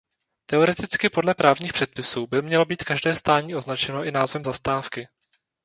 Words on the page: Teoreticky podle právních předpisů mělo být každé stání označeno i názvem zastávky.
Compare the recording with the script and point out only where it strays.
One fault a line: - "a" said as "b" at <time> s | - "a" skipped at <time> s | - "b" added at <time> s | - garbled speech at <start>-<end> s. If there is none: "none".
- "by" added at 2.3 s